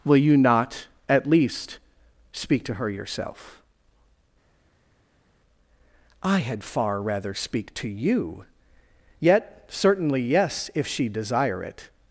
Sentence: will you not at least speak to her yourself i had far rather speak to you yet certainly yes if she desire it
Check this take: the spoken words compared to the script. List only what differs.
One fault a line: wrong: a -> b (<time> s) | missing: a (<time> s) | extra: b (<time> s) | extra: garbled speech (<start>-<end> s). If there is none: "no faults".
no faults